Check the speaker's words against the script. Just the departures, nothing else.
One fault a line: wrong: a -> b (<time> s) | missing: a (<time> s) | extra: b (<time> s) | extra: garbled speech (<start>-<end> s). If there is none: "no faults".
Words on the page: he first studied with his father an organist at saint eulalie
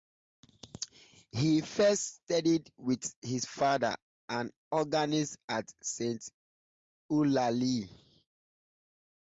no faults